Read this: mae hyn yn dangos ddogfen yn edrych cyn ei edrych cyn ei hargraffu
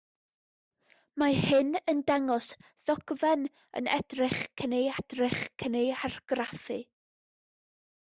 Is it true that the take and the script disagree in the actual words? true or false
false